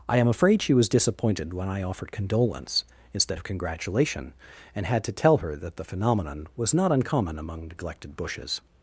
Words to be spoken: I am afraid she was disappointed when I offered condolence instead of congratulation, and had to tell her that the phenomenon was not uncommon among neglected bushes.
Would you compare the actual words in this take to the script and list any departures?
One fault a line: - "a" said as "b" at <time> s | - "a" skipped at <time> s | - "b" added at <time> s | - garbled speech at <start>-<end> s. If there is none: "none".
none